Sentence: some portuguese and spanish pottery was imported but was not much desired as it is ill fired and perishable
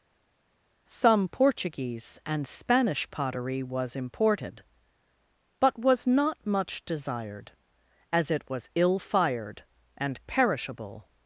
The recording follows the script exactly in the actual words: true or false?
false